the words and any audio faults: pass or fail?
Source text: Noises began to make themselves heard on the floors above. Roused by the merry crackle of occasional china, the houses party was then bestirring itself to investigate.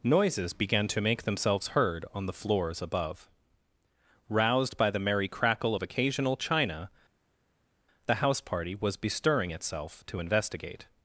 fail